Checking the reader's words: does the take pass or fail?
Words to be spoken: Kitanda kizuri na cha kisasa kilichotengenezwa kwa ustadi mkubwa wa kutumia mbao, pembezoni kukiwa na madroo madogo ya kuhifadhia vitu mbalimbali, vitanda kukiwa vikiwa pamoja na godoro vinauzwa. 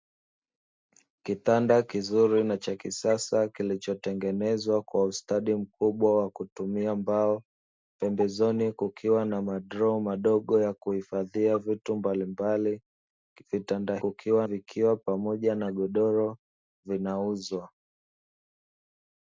pass